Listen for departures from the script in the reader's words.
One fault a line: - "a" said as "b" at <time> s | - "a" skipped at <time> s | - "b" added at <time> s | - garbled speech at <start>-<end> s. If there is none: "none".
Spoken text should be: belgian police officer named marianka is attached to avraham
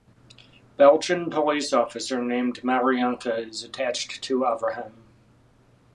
none